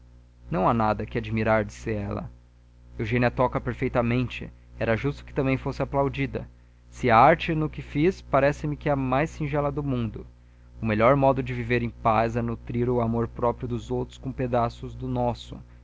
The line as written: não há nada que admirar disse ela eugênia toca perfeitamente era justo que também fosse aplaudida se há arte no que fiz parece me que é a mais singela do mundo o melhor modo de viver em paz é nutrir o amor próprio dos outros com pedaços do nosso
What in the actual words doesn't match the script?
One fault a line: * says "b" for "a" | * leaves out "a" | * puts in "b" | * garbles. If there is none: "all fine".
all fine